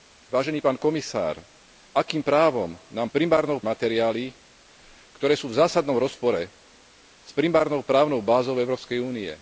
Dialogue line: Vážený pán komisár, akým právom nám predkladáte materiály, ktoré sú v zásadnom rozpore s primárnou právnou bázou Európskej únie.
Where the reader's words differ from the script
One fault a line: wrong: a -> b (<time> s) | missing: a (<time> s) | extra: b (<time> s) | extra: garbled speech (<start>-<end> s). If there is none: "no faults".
wrong: predkladáte -> primárnou (3.1 s)